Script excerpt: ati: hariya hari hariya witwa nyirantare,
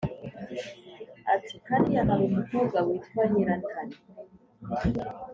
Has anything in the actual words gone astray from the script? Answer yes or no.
yes